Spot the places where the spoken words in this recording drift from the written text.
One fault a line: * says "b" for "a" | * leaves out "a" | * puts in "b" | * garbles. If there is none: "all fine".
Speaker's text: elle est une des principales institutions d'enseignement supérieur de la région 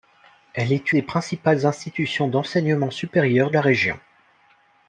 * leaves out "une"
* leaves out "de"